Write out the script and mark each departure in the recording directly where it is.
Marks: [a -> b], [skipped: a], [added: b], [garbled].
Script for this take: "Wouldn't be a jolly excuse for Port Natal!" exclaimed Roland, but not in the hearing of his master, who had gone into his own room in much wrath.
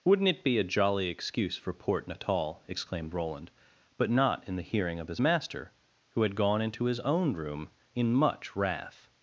"Wouldn't [added: it] be a jolly excuse for Port Natal!" exclaimed Roland, but not in the hearing of his master, who had gone into his own room in much wrath.